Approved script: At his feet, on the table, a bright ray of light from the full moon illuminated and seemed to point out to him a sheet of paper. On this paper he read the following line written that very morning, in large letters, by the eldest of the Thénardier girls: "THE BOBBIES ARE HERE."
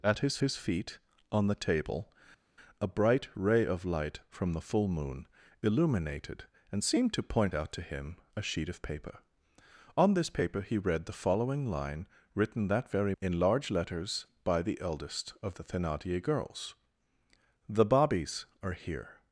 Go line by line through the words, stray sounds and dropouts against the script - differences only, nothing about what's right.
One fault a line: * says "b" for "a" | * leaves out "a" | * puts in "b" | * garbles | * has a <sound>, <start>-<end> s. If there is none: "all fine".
* puts in "his"
* leaves out "morning"